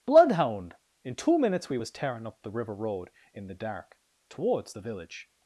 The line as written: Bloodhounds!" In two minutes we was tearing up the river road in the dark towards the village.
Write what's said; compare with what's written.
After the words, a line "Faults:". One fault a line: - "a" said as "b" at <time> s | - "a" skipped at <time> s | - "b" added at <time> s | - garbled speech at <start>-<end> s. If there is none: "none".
Bloodhound!" In two minutes we was tearing up the river road in the dark towards the village.
Faults:
- "Bloodhounds" said as "Bloodhound" at 0.1 s